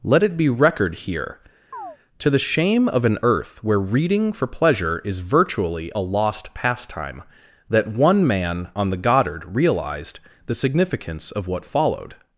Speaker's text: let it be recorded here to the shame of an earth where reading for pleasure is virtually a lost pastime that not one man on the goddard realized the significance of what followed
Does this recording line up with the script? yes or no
no